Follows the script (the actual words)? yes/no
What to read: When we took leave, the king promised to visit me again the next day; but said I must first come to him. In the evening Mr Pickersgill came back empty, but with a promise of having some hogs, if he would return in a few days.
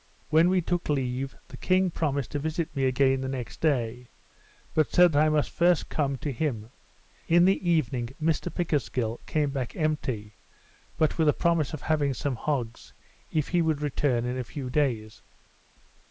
yes